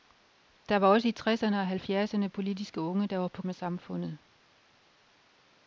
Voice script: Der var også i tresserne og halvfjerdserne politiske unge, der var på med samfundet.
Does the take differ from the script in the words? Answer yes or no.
no